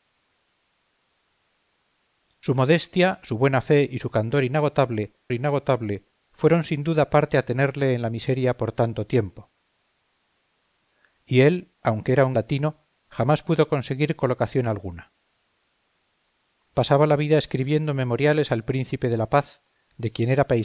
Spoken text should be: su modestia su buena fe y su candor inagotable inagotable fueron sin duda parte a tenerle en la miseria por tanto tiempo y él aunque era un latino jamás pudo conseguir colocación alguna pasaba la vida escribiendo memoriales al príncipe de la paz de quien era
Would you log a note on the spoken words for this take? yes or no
no